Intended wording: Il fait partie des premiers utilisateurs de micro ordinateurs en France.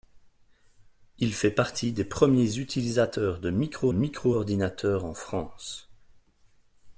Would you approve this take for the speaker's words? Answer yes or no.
no